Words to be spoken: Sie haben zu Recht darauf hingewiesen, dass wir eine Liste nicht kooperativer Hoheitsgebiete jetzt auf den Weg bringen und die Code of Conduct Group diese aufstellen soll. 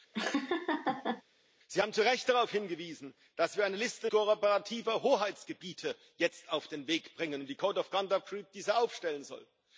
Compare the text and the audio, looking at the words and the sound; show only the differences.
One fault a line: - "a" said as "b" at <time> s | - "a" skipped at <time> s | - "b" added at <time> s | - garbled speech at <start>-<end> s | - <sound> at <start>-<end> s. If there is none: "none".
- laugh at 0.1-1.2 s
- "nicht" skipped at 4.1 s